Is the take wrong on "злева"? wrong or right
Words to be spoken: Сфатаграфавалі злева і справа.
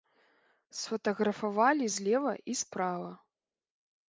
right